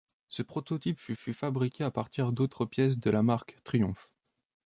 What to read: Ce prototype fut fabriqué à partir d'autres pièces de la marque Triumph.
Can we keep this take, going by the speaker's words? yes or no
no